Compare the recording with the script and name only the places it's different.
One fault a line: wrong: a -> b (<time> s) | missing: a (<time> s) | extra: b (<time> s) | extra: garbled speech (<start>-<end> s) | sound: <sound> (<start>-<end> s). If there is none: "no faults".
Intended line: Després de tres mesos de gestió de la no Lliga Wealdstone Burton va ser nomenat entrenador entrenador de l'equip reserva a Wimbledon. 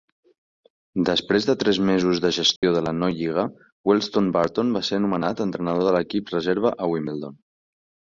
sound: dropout (2.6-2.6 s)
missing: entrenador (5.9 s)